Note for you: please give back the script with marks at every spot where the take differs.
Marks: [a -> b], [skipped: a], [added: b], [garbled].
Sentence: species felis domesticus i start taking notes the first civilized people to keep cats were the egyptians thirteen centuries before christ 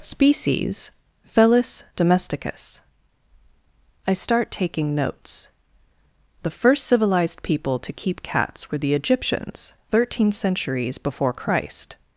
species felis domesticus i start taking notes the first civilized people to keep cats were the egyptians thirteen centuries before christ